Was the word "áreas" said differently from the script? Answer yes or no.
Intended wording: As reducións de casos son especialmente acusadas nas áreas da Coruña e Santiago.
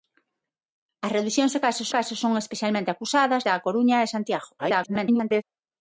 yes